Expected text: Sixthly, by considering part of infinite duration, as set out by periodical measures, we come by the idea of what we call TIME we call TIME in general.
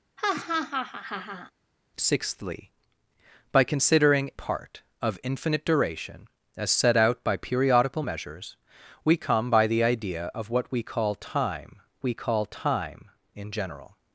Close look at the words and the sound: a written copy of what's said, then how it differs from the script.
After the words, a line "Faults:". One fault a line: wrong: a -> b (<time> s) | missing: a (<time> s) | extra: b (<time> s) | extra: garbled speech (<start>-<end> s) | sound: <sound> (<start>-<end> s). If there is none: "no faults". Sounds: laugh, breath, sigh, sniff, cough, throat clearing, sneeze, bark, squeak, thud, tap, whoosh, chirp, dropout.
Sixthly, by considering part of infinite duration, as set out by periodical measures, we come by the idea of what we call TIME we call TIME in general.
Faults:
sound: laugh (0.2-1.5 s)